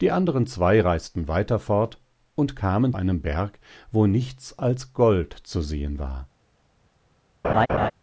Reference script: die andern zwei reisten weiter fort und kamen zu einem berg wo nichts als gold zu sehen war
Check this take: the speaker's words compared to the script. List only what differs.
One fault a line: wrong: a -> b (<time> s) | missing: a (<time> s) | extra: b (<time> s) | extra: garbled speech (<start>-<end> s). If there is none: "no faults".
missing: zu (2.9 s)